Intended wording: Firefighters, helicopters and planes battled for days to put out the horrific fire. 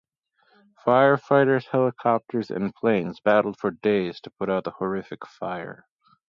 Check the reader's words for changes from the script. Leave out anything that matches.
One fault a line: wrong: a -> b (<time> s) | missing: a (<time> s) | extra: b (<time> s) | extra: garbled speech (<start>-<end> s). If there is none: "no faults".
no faults